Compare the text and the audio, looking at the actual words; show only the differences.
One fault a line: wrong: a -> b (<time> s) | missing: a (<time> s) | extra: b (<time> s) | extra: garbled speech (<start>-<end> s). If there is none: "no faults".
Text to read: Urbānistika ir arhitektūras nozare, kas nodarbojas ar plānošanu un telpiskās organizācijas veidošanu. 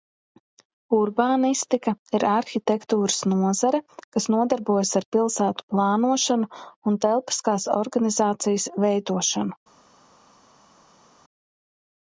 extra: pilsētu (5.2 s)